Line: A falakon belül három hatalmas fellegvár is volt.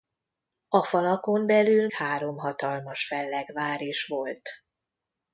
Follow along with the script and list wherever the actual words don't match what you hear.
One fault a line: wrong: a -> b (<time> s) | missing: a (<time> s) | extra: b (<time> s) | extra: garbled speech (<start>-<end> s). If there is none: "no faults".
no faults